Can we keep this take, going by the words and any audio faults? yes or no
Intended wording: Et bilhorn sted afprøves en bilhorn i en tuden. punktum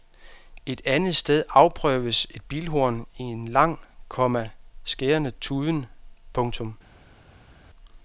no